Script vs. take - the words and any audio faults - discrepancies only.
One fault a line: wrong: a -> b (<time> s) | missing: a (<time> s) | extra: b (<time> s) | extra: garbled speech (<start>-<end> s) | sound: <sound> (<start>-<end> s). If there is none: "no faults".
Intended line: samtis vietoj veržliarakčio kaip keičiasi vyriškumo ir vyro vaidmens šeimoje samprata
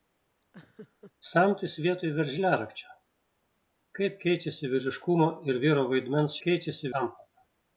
sound: laugh (0.5-1.1 s)
wrong: šeimoje -> keičiasi (6.4 s)